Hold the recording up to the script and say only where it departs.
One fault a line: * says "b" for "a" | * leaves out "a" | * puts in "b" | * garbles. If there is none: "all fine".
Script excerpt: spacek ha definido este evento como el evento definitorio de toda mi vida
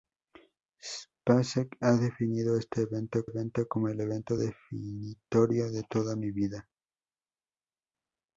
* puts in "evento"